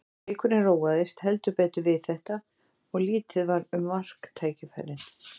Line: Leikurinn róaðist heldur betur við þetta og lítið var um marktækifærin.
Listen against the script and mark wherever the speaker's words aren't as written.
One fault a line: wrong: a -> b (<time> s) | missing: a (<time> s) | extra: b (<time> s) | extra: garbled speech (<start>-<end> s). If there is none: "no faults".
no faults